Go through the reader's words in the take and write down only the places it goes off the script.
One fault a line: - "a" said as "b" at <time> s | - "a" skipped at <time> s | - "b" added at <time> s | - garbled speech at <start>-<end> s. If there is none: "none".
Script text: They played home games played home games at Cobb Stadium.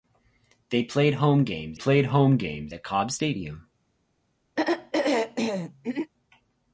none